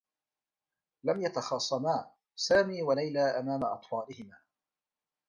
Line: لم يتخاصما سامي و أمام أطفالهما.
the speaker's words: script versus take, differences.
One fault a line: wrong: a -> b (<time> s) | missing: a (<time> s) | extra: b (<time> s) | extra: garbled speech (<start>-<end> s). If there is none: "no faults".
extra: ليلى (2.9 s)